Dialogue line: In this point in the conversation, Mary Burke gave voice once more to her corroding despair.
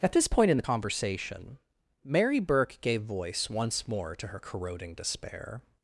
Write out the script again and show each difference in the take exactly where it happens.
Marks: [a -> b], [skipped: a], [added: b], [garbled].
[In -> At] this point in the conversation, Mary Burke gave voice once more to her corroding despair.